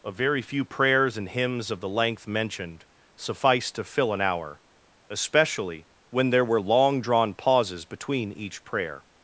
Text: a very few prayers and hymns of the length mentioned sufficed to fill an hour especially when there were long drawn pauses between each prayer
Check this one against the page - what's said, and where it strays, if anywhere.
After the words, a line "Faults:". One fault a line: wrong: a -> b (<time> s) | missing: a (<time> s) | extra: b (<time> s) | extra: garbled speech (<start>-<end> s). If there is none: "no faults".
a very few prayers and hymns of the length mentioned sufficed to fill an hour especially when there were long drawn pauses between each prayer
Faults:
no faults